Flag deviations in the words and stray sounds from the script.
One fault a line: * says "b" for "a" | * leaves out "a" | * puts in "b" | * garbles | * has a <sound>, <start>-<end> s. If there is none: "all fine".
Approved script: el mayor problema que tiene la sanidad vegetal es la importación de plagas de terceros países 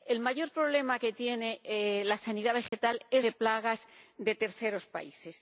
* has a dropout, 2.7-2.7 s
* leaves out "la importación"